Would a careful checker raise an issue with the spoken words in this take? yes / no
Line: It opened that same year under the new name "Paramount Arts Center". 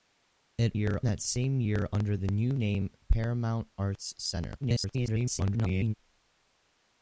yes